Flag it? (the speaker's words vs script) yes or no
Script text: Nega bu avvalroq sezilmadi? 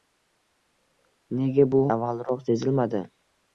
no